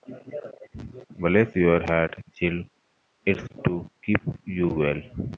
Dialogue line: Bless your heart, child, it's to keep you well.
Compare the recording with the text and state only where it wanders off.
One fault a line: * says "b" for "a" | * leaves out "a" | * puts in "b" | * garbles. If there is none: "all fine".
all fine